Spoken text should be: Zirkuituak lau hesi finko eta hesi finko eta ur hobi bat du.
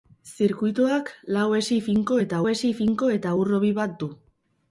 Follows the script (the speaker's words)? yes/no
yes